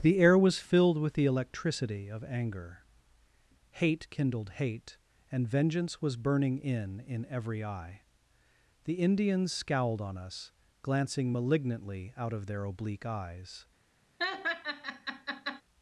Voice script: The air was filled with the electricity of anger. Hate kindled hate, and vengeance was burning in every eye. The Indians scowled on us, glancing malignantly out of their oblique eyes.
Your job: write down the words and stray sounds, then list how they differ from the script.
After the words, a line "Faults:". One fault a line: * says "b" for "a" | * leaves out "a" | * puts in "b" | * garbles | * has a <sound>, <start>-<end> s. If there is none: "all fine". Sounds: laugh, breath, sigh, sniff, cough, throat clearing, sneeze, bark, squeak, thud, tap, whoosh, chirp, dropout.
The air was filled with the electricity of anger. Hate kindled hate, and vengeance was burning in in every eye. The Indians scowled on us, glancing malignantly out of their oblique eyes.
Faults:
* puts in "in"
* has a laugh, 14.2-15.6 s